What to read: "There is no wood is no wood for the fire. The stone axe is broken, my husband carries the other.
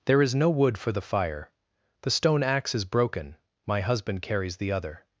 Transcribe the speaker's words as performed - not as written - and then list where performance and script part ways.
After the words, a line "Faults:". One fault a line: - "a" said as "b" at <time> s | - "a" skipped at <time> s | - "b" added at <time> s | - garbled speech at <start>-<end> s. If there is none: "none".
"There is no wood for the fire. The stone axe is broken, my husband carries the other.
Faults:
- "is no wood" skipped at 0.8 s